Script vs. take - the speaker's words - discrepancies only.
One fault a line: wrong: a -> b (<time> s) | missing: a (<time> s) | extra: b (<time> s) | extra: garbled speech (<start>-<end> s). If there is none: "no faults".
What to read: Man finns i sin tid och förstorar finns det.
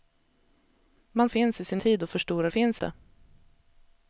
no faults